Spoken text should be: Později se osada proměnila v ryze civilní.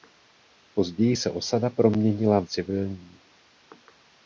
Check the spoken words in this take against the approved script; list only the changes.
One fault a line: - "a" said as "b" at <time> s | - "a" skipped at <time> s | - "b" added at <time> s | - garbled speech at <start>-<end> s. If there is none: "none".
- "ryze" skipped at 2.5 s